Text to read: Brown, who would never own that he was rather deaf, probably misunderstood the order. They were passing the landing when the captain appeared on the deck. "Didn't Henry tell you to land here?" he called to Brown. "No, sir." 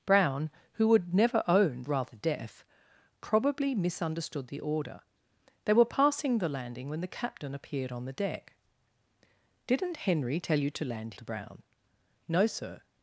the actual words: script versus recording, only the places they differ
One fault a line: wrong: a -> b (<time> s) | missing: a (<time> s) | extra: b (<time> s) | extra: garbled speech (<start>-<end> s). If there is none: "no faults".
missing: that he was (1.8 s)
missing: here he called (11.1 s)